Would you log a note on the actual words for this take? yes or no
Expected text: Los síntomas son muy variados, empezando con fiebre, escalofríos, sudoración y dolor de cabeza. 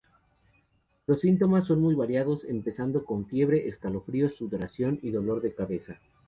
no